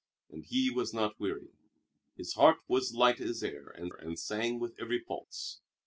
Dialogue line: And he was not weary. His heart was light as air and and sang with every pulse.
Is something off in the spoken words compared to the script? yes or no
no